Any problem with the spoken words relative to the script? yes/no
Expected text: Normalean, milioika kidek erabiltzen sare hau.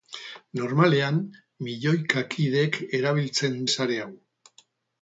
no